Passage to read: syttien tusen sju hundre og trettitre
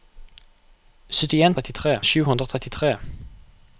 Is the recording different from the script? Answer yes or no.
yes